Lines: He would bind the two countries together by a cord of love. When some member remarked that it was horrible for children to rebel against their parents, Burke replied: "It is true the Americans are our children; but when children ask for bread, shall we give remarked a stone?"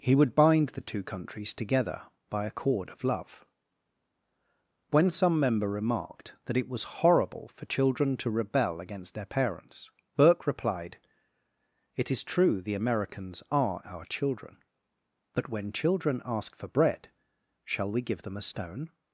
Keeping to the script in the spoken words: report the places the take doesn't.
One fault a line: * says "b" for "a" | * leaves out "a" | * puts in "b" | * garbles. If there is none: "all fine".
* says "them" for "remarked"